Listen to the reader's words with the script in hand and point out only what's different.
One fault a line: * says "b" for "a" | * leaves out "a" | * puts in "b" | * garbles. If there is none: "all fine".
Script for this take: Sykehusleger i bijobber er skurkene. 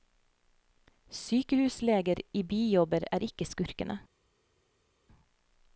* puts in "ikke"